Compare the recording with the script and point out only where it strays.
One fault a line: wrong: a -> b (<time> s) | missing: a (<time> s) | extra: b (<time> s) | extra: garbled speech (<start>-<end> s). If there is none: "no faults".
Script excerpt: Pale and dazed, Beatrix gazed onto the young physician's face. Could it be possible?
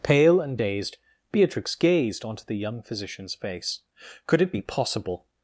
no faults